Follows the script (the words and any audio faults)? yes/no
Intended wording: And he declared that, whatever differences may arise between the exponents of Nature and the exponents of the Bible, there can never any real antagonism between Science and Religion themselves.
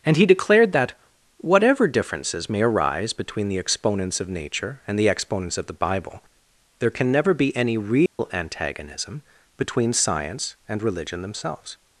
no